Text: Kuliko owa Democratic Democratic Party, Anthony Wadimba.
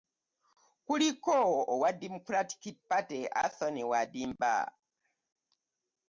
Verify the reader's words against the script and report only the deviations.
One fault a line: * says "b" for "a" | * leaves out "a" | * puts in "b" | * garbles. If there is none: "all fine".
* leaves out "Democratic"